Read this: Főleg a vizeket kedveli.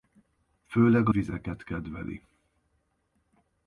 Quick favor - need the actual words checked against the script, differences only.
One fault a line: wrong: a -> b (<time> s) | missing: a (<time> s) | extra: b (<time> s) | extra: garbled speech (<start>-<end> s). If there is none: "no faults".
no faults